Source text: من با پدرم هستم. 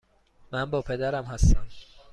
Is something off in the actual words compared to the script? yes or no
no